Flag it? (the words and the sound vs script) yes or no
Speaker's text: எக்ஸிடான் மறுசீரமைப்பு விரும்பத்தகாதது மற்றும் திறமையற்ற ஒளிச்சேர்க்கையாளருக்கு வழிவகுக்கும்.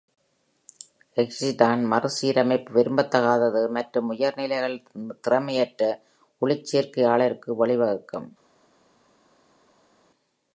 yes